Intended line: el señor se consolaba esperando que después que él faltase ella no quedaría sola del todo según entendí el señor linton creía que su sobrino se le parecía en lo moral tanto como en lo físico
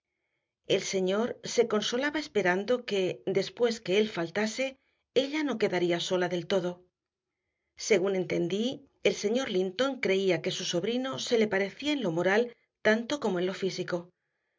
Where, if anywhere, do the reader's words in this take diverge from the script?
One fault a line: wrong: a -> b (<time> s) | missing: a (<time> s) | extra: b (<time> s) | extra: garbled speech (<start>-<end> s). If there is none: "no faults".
no faults